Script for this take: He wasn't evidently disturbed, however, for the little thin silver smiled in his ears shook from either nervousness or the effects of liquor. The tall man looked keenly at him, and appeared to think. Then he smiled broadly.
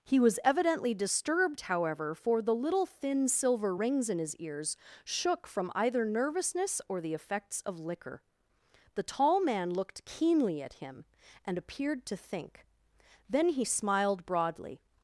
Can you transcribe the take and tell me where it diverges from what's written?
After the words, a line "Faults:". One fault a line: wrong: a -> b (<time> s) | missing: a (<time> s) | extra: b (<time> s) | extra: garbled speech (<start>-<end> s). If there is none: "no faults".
He was evidently disturbed, however, for the little thin silver rings in his ears shook from either nervousness or the effects of liquor. The tall man looked keenly at him, and appeared to think. Then he smiled broadly.
Faults:
wrong: wasn't -> was (0.2 s)
wrong: smiled -> rings (3.7 s)